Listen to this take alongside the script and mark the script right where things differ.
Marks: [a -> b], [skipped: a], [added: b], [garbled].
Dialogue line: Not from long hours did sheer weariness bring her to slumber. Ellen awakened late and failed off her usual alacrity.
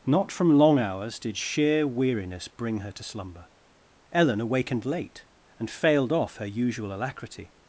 Not from long hours did sheer weariness bring her to slumber. Ellen awakened late and failed off her usual alacrity.